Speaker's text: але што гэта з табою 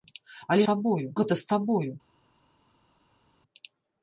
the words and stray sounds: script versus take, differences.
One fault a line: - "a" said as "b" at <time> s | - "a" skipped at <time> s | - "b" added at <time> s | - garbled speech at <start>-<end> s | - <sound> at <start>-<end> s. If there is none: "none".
- "што" said as "табою" at 0.7 s